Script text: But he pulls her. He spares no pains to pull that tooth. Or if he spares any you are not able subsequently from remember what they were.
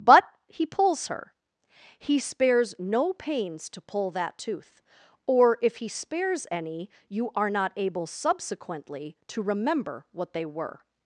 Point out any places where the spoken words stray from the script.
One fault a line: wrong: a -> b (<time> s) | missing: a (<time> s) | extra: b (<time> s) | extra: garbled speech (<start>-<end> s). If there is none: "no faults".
wrong: from -> to (9.3 s)